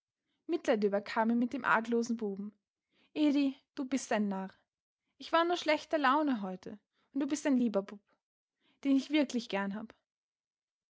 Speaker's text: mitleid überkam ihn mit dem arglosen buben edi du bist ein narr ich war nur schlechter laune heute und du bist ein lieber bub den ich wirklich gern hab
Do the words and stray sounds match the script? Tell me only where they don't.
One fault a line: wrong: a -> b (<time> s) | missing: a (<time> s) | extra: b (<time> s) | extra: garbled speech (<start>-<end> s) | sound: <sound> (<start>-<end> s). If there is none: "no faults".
no faults